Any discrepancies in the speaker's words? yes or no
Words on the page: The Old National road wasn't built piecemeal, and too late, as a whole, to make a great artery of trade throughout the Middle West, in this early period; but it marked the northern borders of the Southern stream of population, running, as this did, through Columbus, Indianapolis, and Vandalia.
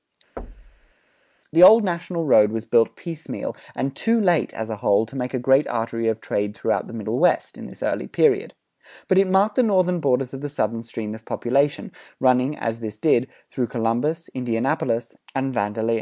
yes